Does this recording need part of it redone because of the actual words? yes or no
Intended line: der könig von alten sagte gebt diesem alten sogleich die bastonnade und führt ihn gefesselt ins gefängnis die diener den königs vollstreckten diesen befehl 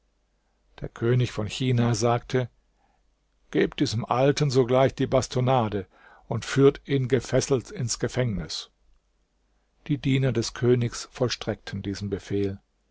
yes